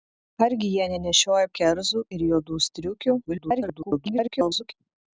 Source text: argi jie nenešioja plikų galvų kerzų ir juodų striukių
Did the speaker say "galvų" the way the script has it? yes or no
no